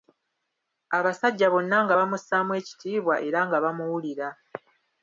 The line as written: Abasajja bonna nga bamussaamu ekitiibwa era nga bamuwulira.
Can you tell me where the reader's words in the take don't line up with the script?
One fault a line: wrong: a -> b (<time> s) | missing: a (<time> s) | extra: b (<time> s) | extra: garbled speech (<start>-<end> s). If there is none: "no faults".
no faults